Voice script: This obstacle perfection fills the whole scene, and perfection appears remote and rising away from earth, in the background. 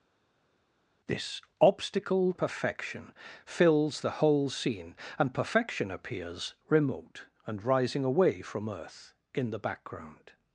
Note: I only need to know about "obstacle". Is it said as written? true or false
true